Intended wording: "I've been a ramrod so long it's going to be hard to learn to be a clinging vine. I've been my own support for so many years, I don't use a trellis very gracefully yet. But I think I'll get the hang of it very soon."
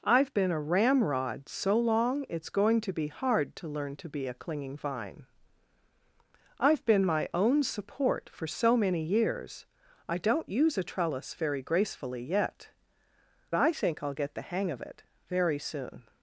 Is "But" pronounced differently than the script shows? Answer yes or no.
yes